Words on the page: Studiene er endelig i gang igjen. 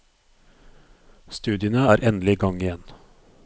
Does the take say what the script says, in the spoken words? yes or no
yes